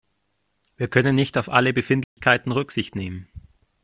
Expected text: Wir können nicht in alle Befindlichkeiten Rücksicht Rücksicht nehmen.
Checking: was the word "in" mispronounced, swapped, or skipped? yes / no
yes